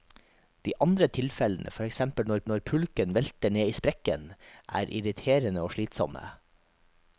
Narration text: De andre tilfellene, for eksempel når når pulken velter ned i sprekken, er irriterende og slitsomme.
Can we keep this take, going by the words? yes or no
yes